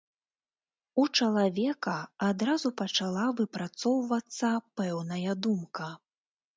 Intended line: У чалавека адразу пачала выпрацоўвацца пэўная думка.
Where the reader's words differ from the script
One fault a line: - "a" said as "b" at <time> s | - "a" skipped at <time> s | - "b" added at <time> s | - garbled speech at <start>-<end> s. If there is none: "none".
none